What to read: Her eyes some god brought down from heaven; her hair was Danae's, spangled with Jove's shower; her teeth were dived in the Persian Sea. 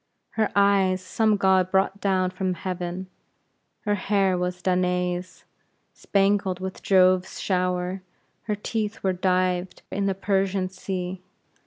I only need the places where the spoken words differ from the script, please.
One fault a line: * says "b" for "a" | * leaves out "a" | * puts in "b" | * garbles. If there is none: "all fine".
all fine